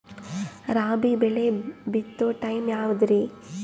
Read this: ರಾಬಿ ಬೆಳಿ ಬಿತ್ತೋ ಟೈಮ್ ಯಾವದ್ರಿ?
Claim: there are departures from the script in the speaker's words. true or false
false